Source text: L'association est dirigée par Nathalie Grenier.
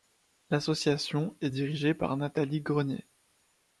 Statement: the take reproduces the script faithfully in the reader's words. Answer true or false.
true